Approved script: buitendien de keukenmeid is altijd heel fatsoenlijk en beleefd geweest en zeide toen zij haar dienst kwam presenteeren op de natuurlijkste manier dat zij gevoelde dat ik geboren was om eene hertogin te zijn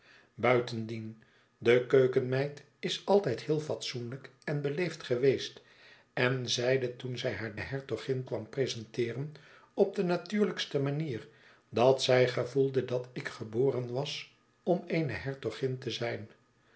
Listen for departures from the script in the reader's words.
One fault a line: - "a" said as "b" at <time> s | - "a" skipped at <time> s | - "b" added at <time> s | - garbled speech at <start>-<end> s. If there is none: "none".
- "dienst" said as "hertogin" at 7.6 s